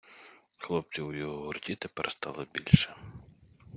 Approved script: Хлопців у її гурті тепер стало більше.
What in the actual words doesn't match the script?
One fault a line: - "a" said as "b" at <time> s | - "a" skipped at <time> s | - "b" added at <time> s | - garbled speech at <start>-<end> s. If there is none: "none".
- "її" said as "його" at 1.1 s